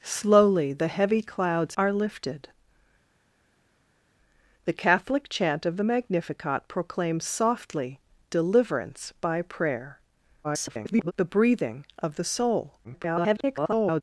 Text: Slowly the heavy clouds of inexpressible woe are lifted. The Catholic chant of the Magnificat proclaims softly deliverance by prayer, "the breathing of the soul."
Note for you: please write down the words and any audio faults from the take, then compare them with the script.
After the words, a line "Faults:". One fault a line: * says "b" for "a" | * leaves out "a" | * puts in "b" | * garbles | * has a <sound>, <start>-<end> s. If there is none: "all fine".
Slowly the heavy clouds are lifted. The Catholic chant of the Magnificat proclaims softly deliverance by prayer, [garbled] "the breathing of the soul." [garbled]
Faults:
* leaves out "of inexpressible woe"
* garbles
* garbles